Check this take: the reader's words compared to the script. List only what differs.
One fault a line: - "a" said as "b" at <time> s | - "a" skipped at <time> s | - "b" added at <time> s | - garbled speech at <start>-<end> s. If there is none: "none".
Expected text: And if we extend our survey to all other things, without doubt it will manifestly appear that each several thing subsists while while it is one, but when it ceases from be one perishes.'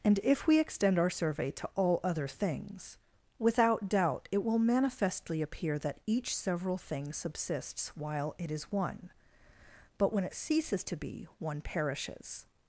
- "while" skipped at 8.3 s
- "from" said as "to" at 10.8 s